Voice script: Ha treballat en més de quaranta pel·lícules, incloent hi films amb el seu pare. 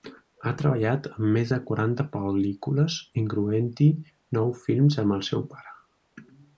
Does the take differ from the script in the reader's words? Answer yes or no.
yes